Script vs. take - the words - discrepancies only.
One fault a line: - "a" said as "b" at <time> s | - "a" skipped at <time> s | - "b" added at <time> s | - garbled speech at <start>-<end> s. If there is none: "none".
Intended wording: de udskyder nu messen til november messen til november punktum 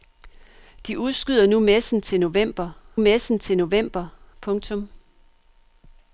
none